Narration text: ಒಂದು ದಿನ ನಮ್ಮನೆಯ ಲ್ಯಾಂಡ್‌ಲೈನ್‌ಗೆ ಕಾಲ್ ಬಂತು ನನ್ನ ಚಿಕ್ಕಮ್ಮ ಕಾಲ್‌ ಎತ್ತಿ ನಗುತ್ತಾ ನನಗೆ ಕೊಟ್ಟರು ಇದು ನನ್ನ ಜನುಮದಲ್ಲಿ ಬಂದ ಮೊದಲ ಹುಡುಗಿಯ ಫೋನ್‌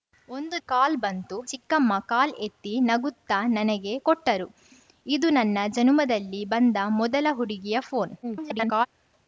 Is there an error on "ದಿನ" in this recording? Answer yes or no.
yes